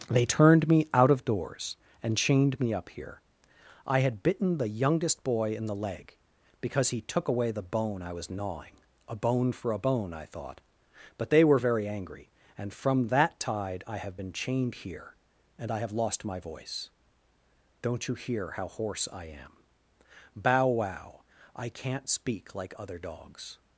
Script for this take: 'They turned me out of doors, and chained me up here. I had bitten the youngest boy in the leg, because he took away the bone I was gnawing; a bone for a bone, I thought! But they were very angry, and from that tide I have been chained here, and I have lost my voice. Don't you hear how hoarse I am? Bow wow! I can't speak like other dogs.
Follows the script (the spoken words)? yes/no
yes